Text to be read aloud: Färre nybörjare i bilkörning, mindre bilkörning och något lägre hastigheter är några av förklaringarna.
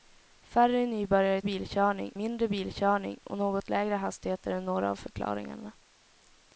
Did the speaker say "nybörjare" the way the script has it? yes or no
yes